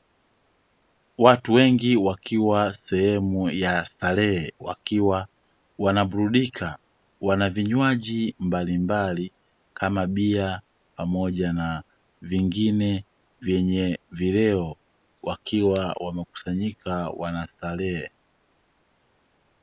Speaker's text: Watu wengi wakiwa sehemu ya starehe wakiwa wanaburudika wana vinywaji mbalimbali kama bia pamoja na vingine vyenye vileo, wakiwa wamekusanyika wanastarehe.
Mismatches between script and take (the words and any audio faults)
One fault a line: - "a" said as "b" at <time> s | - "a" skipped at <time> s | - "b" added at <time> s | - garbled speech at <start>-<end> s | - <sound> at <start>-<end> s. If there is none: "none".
none